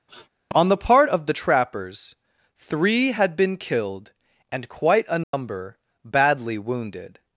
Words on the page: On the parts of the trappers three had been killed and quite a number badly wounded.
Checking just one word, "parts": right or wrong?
wrong